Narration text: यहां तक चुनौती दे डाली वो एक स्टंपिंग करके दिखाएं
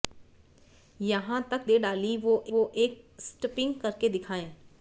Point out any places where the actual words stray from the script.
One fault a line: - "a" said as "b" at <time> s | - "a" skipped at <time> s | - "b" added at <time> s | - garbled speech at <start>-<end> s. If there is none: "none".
- "चुनौती" skipped at 1.7 s
- "वो" added at 2.5 s